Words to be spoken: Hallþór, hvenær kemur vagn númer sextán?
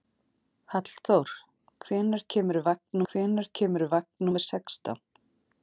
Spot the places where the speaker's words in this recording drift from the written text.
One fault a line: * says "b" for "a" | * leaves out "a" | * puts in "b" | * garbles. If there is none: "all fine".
* puts in "hvenær kemur vagn"